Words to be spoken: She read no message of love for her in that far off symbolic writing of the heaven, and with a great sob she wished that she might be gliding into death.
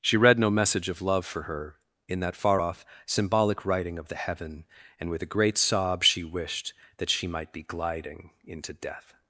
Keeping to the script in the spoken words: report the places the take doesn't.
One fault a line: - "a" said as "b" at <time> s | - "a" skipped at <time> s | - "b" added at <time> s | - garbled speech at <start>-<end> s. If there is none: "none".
none